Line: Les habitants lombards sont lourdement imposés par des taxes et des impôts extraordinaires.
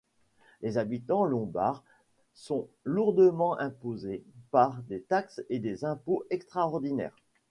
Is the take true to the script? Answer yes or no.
yes